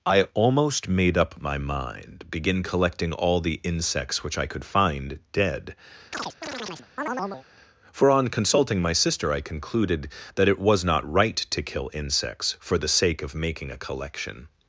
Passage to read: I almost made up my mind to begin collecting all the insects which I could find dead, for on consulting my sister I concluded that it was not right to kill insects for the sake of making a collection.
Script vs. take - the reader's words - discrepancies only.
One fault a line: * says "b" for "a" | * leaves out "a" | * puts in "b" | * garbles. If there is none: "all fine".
* leaves out "to"